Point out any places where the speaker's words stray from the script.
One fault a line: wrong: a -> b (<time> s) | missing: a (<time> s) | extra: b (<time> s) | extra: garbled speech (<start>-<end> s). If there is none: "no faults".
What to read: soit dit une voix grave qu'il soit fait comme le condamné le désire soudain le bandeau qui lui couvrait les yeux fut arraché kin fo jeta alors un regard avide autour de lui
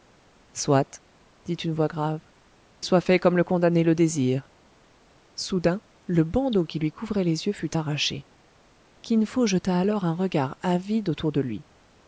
missing: qu'il (2.2 s)